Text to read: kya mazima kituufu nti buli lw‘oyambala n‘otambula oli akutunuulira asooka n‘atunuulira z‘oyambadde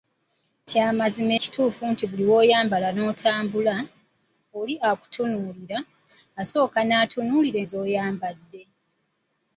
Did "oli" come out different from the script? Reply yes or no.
no